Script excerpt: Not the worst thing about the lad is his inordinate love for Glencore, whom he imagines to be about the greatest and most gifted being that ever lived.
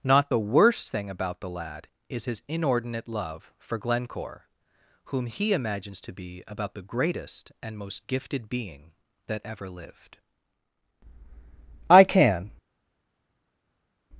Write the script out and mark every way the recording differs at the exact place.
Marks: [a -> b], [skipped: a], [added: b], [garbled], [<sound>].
Not the worst thing about the lad is his inordinate love for Glencore, whom he imagines to be about the greatest and most gifted being that ever lived. [added: I can]